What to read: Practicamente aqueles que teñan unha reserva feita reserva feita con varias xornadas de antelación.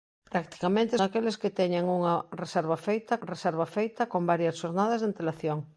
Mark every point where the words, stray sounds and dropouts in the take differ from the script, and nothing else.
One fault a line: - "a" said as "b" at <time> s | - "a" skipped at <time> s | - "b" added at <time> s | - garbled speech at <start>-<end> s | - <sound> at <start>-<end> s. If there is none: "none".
none